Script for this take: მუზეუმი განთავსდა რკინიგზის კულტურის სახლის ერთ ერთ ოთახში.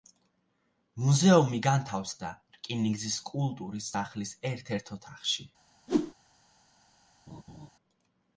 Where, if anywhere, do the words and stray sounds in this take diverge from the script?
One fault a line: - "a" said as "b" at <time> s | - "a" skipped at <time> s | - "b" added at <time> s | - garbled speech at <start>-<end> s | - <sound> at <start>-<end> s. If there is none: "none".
- whoosh at 5.9-6.1 s
- laugh at 7.3-7.7 s